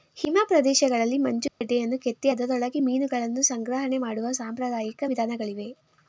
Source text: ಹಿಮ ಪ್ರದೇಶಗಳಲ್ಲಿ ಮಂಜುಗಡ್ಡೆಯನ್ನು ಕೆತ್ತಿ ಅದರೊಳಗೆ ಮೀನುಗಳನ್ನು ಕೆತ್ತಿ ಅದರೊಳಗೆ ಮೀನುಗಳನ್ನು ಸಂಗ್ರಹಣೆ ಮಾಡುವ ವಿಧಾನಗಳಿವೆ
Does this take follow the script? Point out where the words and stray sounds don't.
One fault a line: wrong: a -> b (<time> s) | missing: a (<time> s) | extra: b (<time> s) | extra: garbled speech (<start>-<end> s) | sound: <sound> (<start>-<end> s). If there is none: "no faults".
sound: dropout (1.5-1.6 s)
missing: ಕೆತ್ತಿ ಅದರೊಳಗೆ ಮೀನುಗಳನ್ನು (3.4 s)
extra: ಸಾಂಪ್ರದಾಯಿಕ (4.3 s)